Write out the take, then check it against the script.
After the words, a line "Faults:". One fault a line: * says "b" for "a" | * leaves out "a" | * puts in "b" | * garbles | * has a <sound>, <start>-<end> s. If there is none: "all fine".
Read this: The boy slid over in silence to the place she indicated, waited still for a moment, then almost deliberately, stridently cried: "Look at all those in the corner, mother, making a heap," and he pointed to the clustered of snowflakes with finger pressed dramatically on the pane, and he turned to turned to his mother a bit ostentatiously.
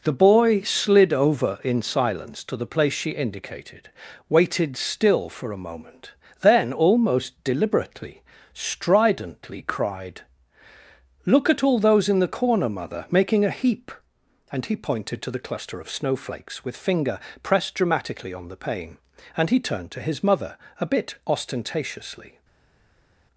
The boy slid over in silence to the place she indicated, waited still for a moment, then almost deliberately, stridently cried: "Look at all those in the corner, mother, making a heap," and he pointed to the cluster of snowflakes with finger pressed dramatically on the pane, and he turned to his mother a bit ostentatiously.
Faults:
* says "cluster" for "clustered"
* leaves out "turned to"